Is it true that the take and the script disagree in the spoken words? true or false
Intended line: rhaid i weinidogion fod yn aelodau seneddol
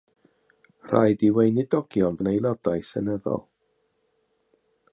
true